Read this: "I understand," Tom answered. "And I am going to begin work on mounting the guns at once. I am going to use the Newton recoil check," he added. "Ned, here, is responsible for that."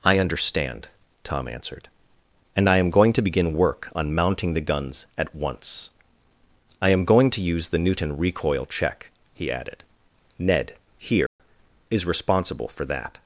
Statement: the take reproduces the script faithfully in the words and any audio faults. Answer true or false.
false